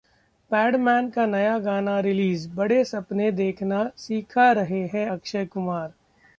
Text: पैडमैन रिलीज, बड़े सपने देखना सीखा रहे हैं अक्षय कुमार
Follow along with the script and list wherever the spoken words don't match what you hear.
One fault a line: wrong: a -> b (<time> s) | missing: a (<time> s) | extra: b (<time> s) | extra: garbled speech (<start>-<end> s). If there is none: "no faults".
extra: का नया गाना (1.1 s)